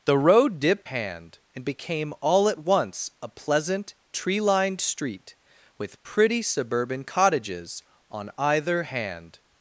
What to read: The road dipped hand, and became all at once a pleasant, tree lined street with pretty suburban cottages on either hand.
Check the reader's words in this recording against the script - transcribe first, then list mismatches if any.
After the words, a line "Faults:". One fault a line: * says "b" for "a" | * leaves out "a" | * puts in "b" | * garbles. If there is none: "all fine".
The road dipped hand, and became all at once a pleasant, tree lined street with pretty suburban cottages on either hand.
Faults:
all fine